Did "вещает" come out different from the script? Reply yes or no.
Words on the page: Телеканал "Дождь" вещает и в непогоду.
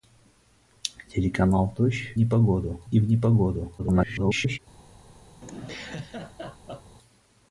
yes